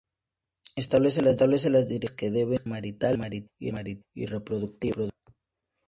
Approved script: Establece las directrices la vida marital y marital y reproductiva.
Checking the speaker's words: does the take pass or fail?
pass